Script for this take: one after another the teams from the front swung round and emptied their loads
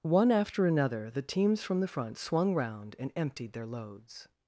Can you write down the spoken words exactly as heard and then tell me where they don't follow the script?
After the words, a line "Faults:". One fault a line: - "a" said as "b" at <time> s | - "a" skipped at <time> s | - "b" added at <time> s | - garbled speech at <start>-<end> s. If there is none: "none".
one after another the teams from the front swung round and emptied their loads
Faults:
none